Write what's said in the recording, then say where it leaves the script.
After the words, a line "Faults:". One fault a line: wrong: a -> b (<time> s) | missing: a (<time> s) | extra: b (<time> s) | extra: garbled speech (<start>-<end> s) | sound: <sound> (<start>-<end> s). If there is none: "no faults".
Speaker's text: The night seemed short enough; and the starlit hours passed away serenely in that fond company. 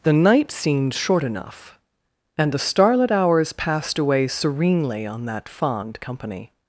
The night seemed short enough; and the starlit hours passed away serenely on that fond company.
Faults:
wrong: in -> on (5.1 s)